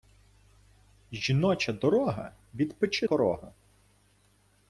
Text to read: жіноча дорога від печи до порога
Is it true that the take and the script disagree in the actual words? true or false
true